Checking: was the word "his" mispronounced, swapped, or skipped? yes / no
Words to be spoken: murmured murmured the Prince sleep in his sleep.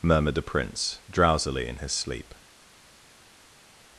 no